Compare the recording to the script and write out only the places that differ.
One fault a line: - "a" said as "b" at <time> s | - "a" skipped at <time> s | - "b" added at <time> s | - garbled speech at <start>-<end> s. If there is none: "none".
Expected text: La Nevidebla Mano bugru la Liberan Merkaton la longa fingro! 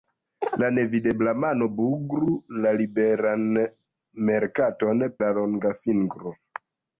none